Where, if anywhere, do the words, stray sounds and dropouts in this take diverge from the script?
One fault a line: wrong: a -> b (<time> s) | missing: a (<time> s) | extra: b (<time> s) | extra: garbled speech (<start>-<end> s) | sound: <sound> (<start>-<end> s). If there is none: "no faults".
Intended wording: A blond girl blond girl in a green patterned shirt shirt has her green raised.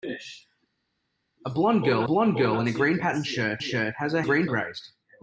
no faults